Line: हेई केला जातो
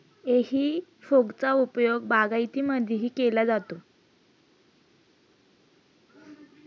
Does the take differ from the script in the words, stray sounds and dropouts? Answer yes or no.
yes